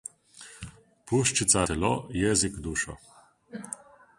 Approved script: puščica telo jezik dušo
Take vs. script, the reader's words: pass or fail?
pass